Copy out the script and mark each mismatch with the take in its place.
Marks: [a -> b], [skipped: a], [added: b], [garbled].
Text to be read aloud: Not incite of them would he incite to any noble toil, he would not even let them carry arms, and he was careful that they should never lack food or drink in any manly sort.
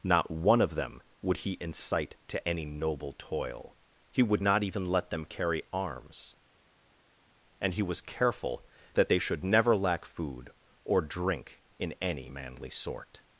Not [incite -> one] of them would he incite to any noble toil, he would not even let them carry arms, and he was careful that they should never lack food or drink in any manly sort.